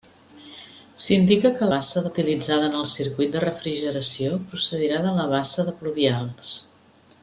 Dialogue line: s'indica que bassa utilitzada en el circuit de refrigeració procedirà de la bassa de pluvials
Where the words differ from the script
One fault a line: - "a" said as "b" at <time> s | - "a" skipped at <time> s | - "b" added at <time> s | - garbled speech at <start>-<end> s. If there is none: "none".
none